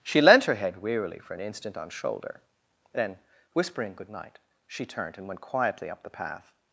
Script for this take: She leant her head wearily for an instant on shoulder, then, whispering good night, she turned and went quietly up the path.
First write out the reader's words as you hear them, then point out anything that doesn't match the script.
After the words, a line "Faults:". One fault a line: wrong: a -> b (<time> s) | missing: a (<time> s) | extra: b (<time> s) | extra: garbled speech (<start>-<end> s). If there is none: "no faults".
She leant her head wearily for an instant on shoulder, then, whispering good night, she turned and went quietly up the path.
Faults:
no faults